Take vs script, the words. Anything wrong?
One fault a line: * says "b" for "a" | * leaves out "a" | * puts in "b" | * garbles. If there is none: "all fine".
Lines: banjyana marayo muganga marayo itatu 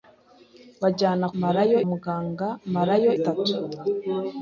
all fine